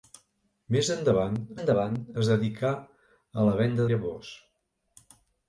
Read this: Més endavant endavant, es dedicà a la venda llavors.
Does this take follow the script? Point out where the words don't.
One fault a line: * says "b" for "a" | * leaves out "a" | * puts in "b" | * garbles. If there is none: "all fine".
all fine